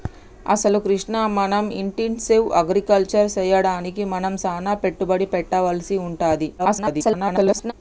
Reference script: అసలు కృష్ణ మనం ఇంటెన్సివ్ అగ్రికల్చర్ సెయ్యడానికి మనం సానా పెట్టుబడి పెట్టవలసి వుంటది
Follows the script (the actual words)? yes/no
no